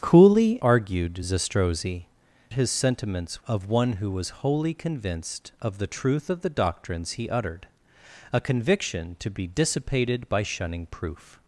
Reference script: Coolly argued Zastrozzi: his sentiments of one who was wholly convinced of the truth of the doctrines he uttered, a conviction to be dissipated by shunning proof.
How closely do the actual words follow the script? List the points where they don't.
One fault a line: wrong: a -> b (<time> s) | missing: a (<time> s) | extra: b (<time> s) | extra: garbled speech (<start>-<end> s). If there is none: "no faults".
no faults